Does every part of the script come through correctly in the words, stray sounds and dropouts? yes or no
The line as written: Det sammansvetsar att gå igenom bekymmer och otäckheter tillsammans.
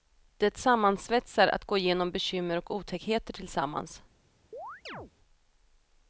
no